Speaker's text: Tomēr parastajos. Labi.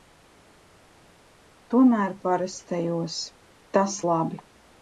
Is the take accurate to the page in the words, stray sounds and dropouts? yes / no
no